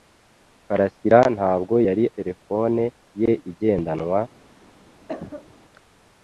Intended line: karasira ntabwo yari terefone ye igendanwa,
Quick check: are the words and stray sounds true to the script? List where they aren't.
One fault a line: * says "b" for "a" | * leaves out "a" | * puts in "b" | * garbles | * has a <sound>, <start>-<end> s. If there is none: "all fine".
* has a cough, 5.1-5.6 s